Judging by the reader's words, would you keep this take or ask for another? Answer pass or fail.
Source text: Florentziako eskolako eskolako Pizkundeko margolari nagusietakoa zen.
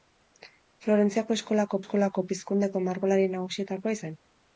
pass